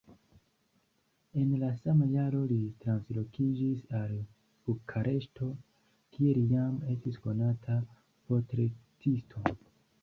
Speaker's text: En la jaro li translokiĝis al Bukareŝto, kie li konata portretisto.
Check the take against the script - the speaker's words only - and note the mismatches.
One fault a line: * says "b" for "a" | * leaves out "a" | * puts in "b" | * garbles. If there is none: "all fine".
* puts in "sama"
* puts in "jam estis"